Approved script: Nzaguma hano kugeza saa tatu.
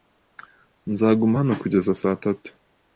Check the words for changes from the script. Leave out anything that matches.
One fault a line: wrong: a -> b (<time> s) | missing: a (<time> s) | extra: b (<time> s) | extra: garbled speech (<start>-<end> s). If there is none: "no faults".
no faults